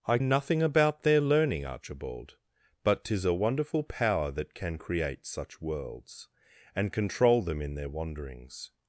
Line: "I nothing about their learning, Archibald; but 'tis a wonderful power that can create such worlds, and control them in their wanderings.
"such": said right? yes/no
yes